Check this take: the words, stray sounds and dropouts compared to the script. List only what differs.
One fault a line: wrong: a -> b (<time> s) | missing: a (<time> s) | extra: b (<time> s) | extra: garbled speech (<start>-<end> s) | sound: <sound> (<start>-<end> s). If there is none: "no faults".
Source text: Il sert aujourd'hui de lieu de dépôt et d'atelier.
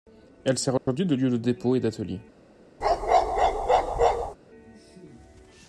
wrong: Il -> Elle (0.5 s)
sound: dropout (0.8-0.9 s)
sound: bark (2.8-4.4 s)